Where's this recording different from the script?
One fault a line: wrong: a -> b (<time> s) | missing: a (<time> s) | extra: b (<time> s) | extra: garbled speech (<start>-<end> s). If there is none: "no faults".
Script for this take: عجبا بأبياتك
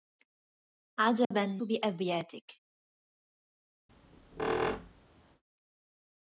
no faults